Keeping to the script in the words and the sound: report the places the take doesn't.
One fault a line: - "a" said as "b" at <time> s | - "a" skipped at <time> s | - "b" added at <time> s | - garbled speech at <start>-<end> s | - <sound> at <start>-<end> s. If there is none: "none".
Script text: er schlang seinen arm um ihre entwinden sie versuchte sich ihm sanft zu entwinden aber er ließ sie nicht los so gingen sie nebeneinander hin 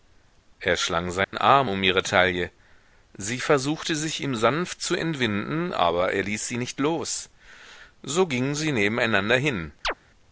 - dropout at 1.2-1.3 s
- "entwinden" said as "taille" at 2.0 s
- chirp at 9.8-9.9 s